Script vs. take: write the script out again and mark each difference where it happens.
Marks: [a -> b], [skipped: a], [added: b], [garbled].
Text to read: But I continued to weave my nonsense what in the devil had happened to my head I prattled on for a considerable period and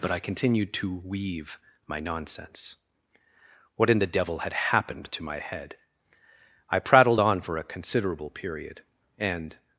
But I continued to weave my nonsense what in the devil had happened to my head I prattled on for a considerable period and